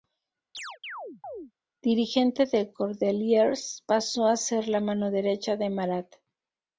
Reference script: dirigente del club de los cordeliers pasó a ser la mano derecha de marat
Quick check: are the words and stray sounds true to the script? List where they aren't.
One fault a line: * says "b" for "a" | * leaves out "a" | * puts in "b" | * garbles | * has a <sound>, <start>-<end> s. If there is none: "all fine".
* has a chirp, 0.5-1.5 s
* leaves out "club de los"